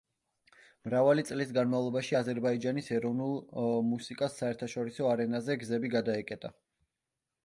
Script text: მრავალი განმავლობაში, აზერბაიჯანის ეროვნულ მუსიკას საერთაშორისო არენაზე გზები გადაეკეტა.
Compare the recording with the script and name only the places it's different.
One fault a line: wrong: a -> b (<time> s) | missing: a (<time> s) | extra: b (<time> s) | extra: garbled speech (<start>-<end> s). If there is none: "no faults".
extra: წლის (1.3 s)